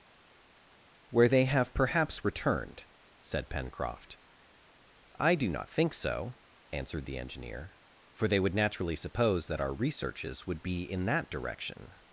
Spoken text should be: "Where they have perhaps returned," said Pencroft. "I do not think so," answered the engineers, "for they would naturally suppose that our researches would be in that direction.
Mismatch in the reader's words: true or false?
true